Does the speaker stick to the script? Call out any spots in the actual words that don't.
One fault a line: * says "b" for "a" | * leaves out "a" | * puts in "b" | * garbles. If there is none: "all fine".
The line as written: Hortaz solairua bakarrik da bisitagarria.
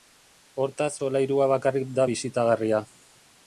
all fine